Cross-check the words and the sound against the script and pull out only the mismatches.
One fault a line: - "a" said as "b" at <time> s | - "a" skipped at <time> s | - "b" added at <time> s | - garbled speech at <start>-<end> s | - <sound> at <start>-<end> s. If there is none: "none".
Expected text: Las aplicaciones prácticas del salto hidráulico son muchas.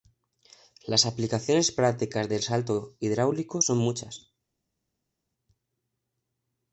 none